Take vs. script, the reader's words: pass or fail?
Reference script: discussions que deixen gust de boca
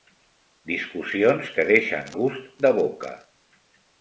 pass